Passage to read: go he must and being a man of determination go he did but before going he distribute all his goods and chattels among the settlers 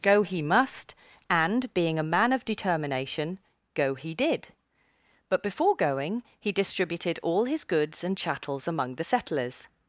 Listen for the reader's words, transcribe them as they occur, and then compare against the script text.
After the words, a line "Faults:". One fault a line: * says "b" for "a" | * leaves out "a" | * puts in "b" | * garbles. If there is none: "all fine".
go he must and being a man of determination go he did but before going he distributed all his goods and chattels among the settlers
Faults:
* says "distributed" for "distribute"